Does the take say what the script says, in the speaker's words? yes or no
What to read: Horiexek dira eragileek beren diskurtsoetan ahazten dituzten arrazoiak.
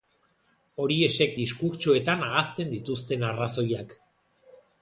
no